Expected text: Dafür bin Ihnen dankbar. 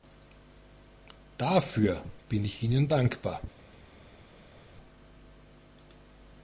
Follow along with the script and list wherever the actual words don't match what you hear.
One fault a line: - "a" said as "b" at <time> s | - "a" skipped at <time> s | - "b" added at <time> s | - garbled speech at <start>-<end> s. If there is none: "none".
- "ich" added at 2.4 s